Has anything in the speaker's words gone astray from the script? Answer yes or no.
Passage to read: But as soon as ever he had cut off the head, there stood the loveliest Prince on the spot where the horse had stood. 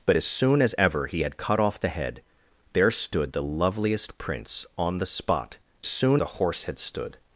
yes